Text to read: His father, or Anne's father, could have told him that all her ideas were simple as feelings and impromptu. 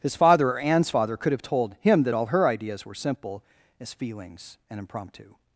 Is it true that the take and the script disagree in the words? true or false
false